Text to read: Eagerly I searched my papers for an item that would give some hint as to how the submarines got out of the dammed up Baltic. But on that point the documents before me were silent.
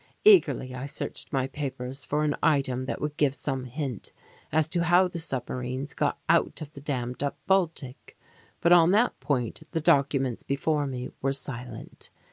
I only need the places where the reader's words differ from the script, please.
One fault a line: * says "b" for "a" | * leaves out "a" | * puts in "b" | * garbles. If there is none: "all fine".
all fine